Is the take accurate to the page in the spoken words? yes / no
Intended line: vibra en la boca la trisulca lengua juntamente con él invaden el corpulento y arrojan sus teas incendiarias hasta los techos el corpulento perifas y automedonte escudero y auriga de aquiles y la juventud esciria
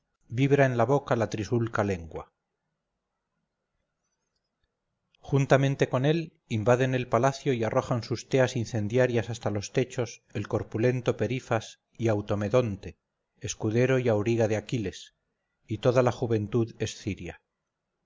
no